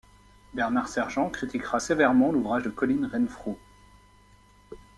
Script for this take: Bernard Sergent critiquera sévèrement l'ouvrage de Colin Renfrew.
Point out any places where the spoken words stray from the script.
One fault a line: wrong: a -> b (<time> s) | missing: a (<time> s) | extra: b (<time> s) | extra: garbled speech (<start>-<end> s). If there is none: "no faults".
no faults